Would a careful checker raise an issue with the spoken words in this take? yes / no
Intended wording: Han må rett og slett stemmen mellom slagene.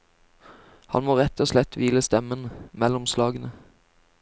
yes